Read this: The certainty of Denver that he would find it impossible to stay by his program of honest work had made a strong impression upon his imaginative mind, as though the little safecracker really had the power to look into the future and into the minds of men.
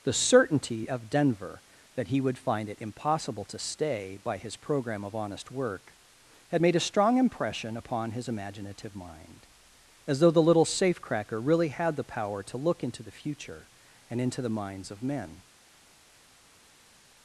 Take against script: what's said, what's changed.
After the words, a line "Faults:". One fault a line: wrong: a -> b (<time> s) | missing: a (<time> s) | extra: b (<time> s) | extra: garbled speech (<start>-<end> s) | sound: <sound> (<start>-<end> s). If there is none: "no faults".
The certainty of Denver that he would find it impossible to stay by his program of honest work had made a strong impression upon his imaginative mind, as though the little safecracker really had the power to look into the future and into the minds of men.
Faults:
no faults